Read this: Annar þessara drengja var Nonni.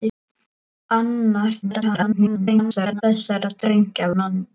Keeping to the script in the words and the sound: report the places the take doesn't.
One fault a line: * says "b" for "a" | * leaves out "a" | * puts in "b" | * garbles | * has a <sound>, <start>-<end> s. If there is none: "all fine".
* garbles
* leaves out "var"